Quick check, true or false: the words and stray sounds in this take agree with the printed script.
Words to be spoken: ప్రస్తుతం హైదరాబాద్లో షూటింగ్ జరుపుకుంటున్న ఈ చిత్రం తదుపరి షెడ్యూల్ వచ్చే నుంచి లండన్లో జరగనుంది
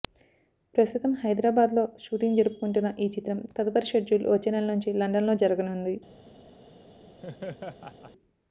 false